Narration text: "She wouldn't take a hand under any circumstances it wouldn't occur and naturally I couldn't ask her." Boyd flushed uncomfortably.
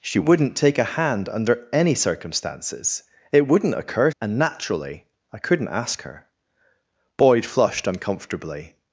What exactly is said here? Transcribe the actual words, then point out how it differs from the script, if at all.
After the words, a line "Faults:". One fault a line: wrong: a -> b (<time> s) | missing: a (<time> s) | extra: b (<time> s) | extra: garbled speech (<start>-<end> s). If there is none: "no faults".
"She wouldn't take a hand under any circumstances it wouldn't occur and naturally I couldn't ask her." Boyd flushed uncomfortably.
Faults:
no faults